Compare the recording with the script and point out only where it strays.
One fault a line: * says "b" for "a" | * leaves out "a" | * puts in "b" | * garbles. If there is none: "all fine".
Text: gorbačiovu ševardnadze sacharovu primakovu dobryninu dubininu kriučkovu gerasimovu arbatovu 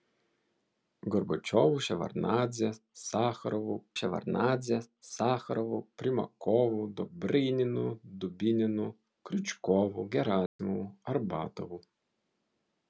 * puts in "ševardnadze sacharovu"